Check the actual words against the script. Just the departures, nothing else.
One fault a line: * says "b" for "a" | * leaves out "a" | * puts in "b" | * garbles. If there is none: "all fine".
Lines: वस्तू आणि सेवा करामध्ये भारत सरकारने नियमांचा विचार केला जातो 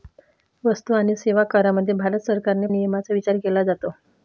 all fine